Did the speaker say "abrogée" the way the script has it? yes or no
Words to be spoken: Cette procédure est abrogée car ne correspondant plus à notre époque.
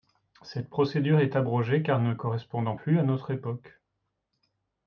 yes